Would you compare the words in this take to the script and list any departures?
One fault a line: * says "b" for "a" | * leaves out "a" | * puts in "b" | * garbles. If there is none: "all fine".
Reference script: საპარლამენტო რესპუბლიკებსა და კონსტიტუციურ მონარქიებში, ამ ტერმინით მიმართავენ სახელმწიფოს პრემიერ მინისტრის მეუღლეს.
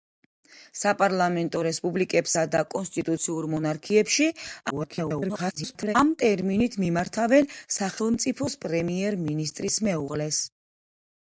* garbles